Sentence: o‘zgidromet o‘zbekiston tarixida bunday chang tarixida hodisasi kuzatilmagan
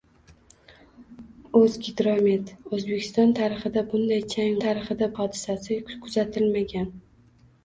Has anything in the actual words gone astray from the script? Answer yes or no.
no